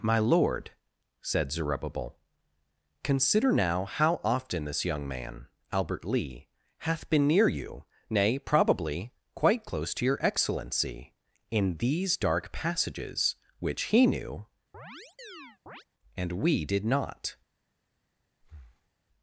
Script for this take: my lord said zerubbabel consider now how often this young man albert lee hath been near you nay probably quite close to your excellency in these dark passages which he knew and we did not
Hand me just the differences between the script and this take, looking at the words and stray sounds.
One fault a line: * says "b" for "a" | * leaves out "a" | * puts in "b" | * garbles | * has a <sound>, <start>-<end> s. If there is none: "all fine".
* has a chirp, 14.7-15.8 s
* has a breath, 18.4-18.9 s